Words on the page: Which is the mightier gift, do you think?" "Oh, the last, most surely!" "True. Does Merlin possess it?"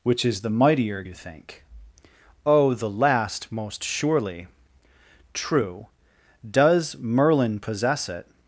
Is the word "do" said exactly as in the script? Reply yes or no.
no